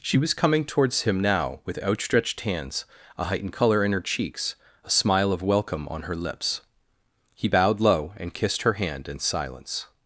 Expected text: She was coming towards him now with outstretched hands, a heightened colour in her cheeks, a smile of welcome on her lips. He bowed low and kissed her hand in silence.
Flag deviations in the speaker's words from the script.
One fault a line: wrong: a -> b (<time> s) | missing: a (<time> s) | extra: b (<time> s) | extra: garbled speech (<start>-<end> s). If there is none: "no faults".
no faults